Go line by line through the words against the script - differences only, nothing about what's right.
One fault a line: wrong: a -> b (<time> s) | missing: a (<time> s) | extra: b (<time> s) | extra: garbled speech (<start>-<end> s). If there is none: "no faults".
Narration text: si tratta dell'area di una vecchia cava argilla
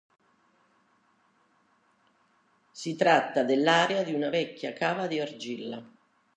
extra: di (5.1 s)